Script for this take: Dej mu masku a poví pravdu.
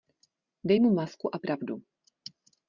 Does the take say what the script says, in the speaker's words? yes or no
no